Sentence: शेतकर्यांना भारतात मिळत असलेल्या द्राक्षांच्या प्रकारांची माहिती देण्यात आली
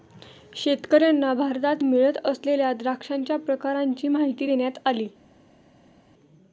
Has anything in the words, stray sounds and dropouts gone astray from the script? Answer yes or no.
no